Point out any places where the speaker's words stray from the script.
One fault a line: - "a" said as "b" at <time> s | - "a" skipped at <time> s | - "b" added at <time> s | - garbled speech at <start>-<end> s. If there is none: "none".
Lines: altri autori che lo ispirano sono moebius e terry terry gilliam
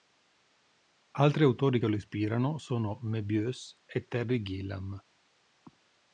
- "terry" skipped at 4.4 s